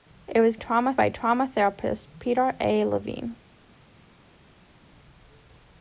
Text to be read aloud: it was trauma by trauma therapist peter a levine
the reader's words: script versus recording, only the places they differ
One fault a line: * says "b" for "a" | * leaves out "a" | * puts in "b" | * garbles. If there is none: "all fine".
all fine